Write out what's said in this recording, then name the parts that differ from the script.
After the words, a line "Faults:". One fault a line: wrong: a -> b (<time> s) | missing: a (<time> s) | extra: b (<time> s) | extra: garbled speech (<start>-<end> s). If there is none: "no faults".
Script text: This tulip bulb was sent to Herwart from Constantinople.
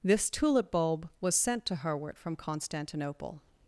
This tulip bulb was sent to Herwart from Constantinople.
Faults:
no faults